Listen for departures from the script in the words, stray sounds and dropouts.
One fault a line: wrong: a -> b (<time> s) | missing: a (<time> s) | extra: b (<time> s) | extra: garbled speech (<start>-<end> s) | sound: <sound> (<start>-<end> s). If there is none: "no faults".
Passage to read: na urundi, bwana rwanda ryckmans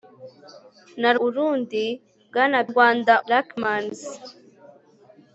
no faults